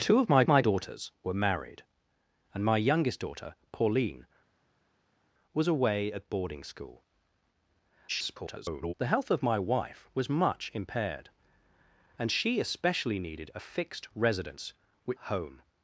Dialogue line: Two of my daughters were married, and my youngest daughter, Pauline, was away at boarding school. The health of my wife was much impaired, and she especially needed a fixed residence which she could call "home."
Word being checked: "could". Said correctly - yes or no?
no